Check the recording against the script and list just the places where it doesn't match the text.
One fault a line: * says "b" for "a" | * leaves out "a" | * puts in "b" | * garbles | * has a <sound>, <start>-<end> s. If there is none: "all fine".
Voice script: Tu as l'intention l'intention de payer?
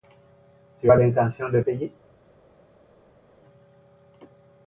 * leaves out "l'intention"